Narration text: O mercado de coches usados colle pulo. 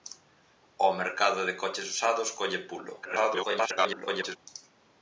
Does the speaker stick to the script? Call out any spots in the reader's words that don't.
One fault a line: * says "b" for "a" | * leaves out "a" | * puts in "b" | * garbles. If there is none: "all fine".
* garbles